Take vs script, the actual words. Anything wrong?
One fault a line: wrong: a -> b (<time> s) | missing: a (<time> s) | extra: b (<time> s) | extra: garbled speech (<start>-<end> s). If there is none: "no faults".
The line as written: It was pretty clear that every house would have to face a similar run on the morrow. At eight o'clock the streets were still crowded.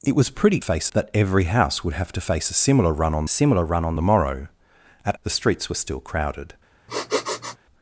wrong: clear -> face (0.6 s)
extra: similar run on (3.3 s)
missing: eight o'clock (5.1 s)